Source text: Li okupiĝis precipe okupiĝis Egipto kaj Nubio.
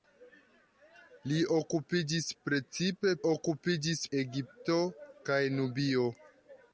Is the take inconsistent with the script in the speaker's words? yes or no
no